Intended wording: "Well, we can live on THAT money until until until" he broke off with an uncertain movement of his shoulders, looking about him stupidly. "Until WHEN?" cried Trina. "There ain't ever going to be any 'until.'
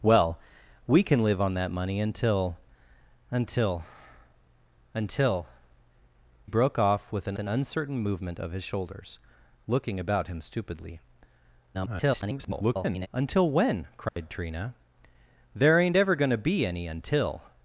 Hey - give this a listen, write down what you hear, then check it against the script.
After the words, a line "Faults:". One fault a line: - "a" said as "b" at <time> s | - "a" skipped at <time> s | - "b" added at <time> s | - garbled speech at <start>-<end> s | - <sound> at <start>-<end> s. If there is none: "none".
"Well, we can live on THAT money until until until" broke off with an an uncertain movement of his shoulders, looking about him stupidly. [garbled] "Until WHEN?" cried Trina. "There ain't ever going to be any 'until.'
Faults:
- "he" skipped at 5.5 s
- "an" added at 7.4 s
- garbled speech at 11.7-13.1 s
- dropout at 14.1-14.2 s